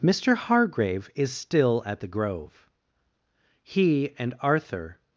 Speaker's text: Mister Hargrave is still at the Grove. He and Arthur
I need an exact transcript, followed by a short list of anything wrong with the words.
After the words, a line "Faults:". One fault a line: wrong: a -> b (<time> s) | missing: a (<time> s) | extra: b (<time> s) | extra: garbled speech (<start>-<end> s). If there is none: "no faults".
Mister Hargrave is still at the Grove. He and Arthur
Faults:
no faults